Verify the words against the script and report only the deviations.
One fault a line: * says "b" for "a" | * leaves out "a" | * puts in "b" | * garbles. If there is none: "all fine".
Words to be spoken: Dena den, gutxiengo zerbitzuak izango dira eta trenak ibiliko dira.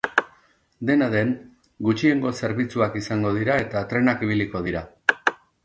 all fine